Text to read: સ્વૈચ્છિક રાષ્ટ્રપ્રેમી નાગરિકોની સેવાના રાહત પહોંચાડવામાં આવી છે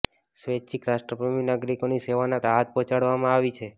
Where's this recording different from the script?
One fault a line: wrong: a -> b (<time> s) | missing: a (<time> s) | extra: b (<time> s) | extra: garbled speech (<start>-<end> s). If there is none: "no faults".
no faults